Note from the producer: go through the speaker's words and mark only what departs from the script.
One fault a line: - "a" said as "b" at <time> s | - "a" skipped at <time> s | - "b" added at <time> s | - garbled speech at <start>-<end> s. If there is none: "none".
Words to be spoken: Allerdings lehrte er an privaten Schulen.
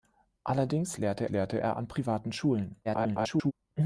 - "lehrte" added at 1.3 s
- garbled speech at 2.8-3.5 s